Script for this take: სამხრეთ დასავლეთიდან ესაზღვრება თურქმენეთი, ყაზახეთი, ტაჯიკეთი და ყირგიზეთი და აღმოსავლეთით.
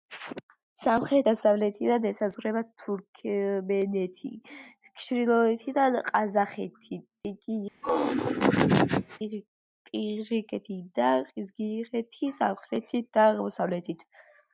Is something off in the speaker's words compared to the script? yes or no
yes